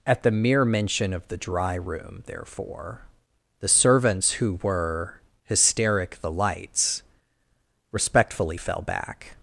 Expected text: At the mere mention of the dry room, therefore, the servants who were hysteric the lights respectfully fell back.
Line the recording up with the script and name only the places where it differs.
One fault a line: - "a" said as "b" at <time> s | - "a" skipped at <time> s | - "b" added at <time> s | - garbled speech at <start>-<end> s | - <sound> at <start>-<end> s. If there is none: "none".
none